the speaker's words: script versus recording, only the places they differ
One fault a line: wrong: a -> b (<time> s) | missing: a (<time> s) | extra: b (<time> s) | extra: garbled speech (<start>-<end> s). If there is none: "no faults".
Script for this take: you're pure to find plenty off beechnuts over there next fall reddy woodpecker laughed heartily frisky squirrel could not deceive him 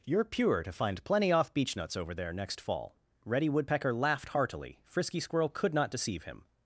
no faults